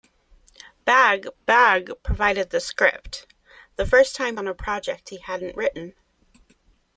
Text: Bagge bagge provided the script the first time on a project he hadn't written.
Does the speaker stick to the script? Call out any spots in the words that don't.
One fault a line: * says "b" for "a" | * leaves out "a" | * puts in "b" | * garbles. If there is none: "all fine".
all fine